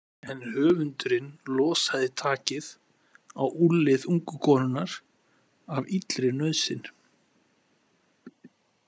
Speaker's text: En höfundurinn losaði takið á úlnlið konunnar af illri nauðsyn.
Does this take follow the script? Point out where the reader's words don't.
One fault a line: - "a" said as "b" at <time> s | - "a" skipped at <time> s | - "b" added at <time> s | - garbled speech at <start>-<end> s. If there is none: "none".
- "ungu" added at 4.1 s